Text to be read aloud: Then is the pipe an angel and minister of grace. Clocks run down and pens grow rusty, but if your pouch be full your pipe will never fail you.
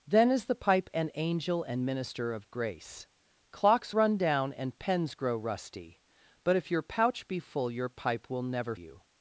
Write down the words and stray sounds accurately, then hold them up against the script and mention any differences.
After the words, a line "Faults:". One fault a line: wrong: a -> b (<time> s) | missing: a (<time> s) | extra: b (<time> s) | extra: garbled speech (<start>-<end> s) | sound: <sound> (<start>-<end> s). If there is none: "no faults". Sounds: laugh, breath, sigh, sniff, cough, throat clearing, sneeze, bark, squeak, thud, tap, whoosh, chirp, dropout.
Then is the pipe an angel and minister of grace. Clocks run down and pens grow rusty, but if your pouch be full your pipe will never you.
Faults:
missing: fail (8.7 s)